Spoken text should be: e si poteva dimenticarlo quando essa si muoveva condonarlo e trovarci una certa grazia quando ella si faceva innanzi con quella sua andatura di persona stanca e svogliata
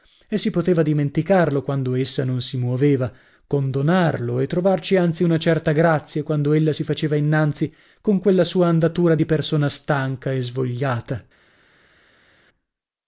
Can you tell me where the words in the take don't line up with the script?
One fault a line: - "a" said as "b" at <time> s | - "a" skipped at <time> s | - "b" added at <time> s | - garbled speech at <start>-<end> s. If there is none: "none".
- "non" added at 2.2 s
- "anzi" added at 5.0 s